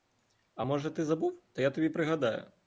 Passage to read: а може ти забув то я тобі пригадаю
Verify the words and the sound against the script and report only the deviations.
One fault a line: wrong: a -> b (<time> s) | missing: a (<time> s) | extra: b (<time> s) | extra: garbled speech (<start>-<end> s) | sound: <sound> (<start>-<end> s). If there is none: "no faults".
no faults